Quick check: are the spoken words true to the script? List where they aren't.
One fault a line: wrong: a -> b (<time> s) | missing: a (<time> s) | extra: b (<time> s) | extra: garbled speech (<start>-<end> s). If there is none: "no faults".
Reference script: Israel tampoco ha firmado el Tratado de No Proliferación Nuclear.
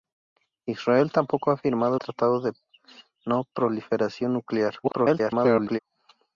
missing: el (1.9 s)
extra: garbled speech (4.8-5.8 s)